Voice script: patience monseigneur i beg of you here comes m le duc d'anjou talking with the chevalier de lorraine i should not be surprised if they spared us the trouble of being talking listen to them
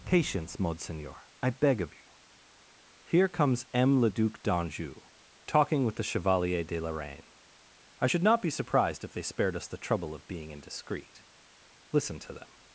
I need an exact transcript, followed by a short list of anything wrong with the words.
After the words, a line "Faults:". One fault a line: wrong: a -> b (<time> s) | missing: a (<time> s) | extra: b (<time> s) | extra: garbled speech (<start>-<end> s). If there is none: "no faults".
patience monseigneur i beg of you here comes m le duc d'anjou talking with the chevalier de lorraine i should not be surprised if they spared us the trouble of being indiscreet listen to them
Faults:
wrong: talking -> indiscreet (10.5 s)